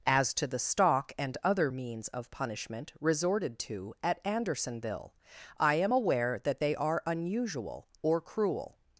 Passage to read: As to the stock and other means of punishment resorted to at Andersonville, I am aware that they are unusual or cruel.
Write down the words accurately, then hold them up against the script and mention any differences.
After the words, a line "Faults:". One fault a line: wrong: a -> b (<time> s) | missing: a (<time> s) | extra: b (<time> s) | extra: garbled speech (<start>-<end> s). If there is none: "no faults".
As to the stock and other means of punishment resorted to at Andersonville, I am aware that they are unusual or cruel.
Faults:
no faults